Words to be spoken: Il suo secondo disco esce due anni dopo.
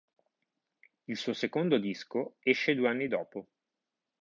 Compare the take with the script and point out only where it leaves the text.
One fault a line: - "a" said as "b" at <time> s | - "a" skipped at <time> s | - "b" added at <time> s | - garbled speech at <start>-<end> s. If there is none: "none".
none